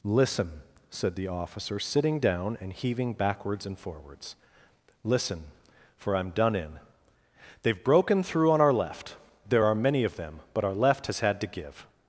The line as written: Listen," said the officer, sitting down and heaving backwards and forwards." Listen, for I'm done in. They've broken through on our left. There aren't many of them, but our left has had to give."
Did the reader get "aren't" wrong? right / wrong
wrong